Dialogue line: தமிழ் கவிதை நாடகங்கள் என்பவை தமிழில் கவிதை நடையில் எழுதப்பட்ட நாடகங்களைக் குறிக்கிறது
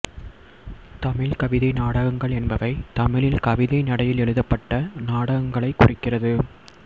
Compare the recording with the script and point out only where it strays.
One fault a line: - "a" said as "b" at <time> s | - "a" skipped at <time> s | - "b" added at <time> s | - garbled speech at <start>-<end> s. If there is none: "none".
none